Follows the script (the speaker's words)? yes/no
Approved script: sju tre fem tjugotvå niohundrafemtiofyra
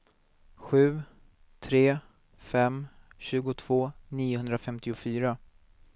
yes